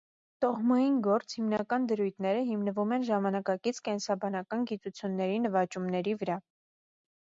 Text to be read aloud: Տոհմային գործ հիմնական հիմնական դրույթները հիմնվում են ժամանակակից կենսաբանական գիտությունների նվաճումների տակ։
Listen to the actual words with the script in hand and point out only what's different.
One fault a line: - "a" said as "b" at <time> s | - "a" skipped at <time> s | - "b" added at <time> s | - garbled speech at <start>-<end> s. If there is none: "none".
- "հիմնական" skipped at 1.9 s
- "տակ" said as "վրա" at 6.2 s